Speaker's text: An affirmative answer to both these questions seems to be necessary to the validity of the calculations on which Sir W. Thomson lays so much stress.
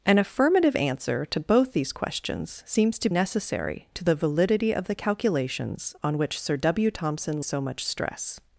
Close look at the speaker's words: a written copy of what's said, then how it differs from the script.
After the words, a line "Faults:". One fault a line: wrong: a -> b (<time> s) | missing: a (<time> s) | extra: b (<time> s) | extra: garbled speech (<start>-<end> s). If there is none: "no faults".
An affirmative answer to both these questions seems to necessary to the validity of the calculations on which Sir W. Thomson so much stress.
Faults:
missing: be (3.1 s)
missing: lays (7.4 s)